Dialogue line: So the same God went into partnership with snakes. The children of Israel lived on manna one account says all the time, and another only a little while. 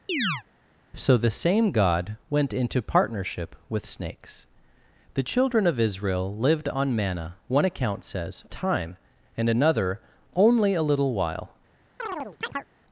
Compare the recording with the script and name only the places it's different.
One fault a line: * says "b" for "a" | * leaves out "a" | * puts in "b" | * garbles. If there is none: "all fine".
* leaves out "all the"